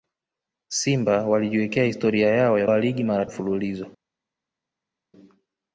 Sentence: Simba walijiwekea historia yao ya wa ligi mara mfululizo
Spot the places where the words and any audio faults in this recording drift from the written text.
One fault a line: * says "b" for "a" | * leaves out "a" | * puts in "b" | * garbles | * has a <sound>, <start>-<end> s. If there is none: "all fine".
all fine